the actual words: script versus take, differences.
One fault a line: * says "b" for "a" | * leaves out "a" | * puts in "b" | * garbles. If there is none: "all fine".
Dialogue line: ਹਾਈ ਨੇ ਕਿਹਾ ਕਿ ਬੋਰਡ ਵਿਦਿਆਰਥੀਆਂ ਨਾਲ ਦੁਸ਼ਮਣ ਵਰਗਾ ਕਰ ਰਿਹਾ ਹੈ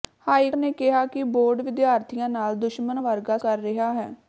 all fine